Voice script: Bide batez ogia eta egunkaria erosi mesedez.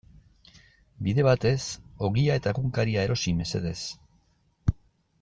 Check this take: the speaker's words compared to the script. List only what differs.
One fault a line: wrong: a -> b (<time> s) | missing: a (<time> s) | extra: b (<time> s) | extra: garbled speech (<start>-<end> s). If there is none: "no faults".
no faults